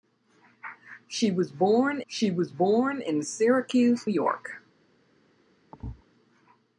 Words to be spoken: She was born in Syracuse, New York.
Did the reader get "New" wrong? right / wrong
wrong